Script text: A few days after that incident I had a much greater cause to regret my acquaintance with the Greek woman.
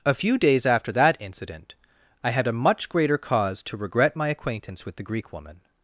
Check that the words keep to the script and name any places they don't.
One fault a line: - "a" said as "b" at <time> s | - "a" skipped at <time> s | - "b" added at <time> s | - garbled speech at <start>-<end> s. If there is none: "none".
none